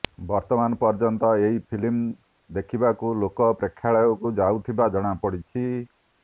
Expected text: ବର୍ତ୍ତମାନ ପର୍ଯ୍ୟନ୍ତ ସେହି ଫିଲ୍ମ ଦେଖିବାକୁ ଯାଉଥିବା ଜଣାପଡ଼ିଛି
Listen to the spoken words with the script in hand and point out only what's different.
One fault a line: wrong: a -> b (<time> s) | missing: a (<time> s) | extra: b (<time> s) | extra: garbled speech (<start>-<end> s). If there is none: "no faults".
wrong: ସେହି -> ଏହି (1.4 s)
extra: ଲୋକ ପ୍ରେକ୍ଷାଳୟକୁ (3.2 s)